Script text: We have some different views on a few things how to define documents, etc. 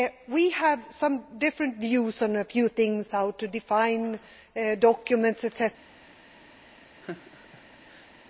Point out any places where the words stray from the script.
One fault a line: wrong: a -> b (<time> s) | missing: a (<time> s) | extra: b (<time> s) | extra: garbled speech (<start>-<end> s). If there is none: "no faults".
no faults